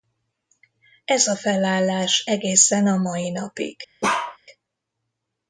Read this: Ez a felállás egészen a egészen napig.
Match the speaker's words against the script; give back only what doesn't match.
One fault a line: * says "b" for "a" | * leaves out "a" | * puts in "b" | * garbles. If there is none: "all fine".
* says "mai" for "egészen"